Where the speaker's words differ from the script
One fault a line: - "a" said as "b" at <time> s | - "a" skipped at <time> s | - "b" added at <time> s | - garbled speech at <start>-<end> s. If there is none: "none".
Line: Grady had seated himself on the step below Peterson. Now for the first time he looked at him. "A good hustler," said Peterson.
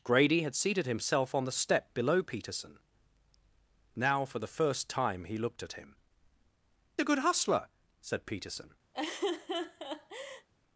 none